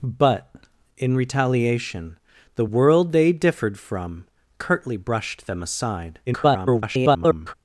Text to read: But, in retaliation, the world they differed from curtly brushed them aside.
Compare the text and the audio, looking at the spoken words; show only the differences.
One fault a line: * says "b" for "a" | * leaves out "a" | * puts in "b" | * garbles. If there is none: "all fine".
* garbles